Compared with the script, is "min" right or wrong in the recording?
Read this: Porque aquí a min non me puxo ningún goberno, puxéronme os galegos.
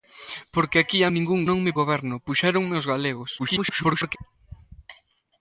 wrong